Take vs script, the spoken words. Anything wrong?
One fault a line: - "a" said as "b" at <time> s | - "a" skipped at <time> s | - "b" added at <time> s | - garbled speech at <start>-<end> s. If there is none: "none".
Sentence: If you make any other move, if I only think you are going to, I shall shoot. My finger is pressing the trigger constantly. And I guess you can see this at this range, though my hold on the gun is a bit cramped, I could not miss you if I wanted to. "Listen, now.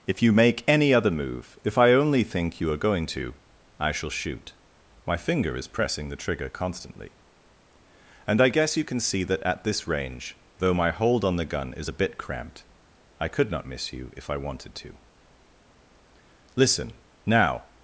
- "this" said as "that" at 9.2 s